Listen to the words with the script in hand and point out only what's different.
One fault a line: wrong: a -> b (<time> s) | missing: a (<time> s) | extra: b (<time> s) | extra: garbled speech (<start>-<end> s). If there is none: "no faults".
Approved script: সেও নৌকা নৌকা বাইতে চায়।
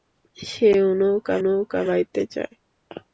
no faults